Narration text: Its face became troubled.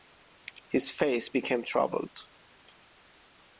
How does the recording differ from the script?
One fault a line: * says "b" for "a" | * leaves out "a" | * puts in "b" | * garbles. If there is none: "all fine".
* says "His" for "Its"